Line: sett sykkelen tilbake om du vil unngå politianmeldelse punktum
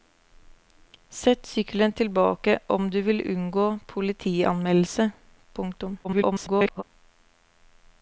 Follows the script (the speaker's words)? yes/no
no